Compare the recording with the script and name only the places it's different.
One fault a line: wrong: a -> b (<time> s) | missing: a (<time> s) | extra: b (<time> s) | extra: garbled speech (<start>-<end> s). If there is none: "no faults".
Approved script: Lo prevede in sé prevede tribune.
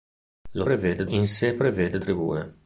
no faults